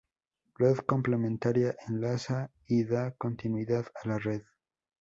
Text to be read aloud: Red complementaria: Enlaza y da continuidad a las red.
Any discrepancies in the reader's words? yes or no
yes